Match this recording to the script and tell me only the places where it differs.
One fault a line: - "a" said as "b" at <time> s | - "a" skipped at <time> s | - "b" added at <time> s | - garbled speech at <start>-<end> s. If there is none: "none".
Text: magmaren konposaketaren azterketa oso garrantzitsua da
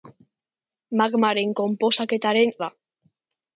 - "azterketa oso garrantzitsua" skipped at 2.5 s